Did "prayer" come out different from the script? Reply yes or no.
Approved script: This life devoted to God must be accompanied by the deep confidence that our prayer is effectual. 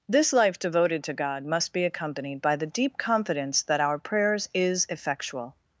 yes